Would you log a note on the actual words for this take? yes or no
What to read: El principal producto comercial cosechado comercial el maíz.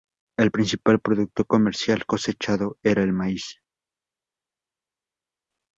yes